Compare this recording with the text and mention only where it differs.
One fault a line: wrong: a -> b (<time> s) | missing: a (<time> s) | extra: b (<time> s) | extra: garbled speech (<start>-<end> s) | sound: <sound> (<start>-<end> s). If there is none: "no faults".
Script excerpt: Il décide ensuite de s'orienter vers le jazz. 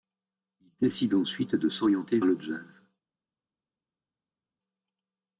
missing: vers (2.2 s)